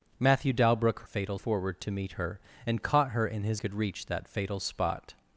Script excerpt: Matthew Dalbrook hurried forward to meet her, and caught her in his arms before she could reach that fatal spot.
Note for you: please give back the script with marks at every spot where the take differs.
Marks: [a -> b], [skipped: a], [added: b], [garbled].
Matthew Dalbrook [hurried -> fatal] forward to meet her, and caught her in his [skipped: arms before she] could reach that fatal spot.